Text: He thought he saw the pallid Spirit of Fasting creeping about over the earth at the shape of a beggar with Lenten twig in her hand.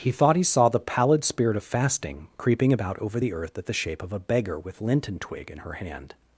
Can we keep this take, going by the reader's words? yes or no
yes